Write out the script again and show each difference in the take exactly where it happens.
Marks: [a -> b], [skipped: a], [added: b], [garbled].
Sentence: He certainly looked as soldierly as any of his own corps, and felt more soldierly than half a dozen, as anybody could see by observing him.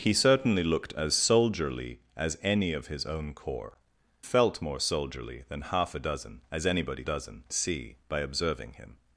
He certainly looked as soldierly as any of his own corps, [skipped: and] felt more soldierly than half a dozen, as anybody [could -> dozen] see by observing him.